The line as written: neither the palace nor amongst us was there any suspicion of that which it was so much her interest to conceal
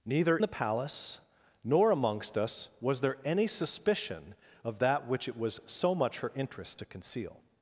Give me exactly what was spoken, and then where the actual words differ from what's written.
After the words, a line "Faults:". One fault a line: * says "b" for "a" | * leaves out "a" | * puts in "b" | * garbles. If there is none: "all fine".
neither the palace nor amongst us was there any suspicion of that which it was so much her interest to conceal
Faults:
all fine